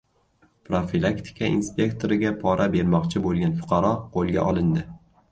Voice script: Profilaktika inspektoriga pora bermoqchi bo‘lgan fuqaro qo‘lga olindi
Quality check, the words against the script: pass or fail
pass